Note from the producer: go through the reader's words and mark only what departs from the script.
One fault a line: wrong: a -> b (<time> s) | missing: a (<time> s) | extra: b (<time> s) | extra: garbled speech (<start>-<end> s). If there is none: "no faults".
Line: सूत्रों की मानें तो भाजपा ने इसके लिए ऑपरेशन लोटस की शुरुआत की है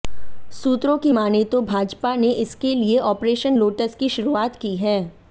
no faults